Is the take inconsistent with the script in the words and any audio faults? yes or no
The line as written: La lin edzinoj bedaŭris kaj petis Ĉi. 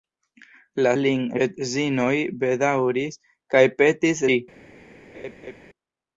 yes